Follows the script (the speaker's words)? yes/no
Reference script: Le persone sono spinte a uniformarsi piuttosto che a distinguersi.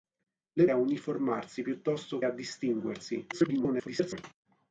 no